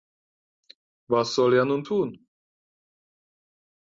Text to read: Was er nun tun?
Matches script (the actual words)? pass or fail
fail